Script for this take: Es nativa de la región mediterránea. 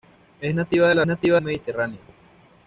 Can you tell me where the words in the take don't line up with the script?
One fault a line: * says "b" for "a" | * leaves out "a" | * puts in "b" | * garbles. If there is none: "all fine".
* says "nativa" for "región"